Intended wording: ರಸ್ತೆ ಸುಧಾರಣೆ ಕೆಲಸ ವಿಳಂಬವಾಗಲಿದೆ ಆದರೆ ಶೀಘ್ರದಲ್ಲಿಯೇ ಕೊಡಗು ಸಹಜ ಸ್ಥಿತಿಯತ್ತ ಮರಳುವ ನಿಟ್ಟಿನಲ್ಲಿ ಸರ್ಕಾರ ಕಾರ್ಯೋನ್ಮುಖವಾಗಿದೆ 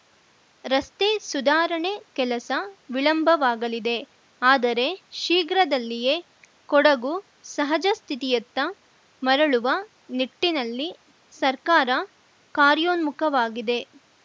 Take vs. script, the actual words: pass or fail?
pass